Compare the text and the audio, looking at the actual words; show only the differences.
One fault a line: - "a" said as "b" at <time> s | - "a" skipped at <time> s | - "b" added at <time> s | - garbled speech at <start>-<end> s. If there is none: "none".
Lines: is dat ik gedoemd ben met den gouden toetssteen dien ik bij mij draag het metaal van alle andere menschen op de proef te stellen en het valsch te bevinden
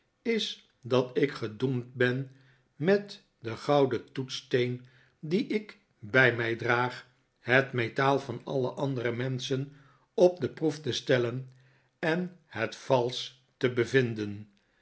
none